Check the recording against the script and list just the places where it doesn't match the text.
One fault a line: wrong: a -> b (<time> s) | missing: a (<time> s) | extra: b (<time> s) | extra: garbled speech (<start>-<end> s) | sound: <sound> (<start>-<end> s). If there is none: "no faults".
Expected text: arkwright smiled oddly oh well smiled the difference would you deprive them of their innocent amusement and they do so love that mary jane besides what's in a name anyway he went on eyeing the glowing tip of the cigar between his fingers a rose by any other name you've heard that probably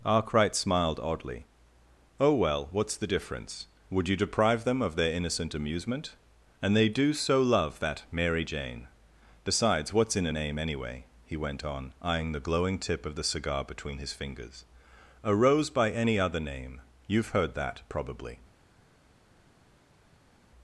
wrong: smiled -> what's (2.7 s)